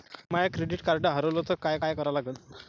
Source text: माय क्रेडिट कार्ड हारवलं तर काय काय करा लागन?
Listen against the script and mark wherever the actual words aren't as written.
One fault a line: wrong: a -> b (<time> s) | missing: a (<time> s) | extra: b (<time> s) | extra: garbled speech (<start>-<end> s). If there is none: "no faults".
no faults